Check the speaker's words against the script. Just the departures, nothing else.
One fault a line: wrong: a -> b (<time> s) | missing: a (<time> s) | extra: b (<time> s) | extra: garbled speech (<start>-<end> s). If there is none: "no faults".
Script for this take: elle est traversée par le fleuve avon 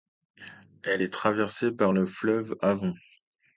no faults